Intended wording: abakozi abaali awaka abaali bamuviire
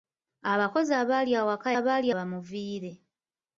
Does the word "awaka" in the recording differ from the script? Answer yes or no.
no